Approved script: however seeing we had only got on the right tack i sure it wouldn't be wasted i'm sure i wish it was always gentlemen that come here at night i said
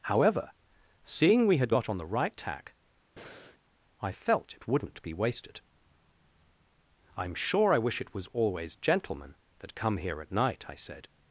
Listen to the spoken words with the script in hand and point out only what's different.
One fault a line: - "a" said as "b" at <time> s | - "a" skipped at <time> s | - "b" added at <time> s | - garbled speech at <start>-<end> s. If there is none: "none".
- "only" skipped at 1.7 s
- "sure" said as "felt" at 4.1 s